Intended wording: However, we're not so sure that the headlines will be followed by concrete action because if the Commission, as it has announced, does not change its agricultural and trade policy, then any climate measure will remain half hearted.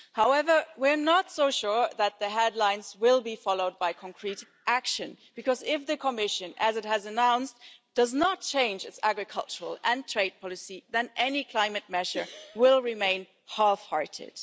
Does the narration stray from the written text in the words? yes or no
no